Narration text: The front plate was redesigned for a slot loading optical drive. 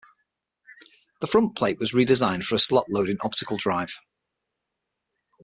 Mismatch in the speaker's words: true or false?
false